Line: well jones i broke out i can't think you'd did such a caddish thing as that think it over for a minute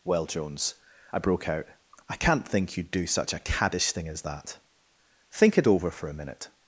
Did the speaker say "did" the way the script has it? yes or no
no